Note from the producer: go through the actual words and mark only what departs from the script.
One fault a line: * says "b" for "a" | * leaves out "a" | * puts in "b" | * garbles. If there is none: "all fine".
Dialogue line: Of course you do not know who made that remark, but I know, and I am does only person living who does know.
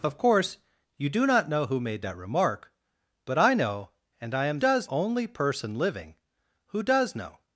all fine